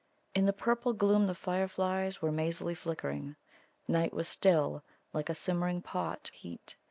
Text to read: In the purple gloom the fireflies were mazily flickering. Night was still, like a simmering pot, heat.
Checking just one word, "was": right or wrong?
right